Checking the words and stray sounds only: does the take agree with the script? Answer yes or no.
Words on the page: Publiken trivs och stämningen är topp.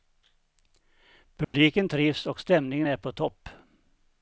no